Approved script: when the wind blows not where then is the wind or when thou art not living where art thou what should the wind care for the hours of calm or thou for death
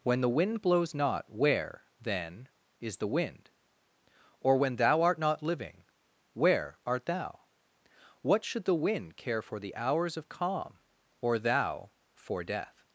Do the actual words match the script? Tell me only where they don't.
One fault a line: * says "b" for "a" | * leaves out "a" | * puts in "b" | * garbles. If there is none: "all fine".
all fine